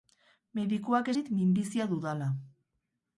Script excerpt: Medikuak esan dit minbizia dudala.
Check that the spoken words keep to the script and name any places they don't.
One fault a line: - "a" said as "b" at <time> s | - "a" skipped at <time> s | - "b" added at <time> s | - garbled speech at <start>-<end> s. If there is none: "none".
- "esan" skipped at 1.1 s